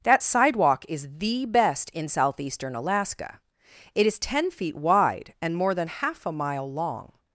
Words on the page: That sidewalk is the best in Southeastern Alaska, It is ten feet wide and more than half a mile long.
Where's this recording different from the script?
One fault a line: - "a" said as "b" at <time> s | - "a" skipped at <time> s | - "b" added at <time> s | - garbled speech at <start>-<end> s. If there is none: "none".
none